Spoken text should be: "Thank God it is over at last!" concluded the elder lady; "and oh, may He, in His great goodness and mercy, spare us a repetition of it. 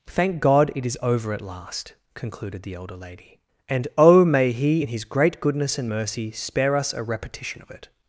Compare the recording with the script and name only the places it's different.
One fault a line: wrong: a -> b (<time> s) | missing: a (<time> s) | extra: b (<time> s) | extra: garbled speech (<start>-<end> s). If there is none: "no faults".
no faults